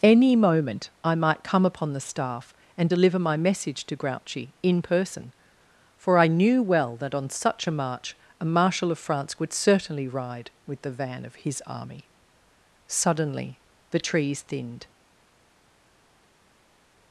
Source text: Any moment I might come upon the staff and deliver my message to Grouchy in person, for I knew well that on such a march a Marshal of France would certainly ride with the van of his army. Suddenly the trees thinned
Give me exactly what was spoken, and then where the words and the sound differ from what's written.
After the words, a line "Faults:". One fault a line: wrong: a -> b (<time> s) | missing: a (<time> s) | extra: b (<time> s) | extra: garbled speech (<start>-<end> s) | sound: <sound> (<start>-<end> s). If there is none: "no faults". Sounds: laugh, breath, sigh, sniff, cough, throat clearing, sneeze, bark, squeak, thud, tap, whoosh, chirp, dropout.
Any moment I might come upon the staff and deliver my message to Grouchy in person, for I knew well that on such a march a Marshal of France would certainly ride with the van of his army. Suddenly the trees thinned
Faults:
no faults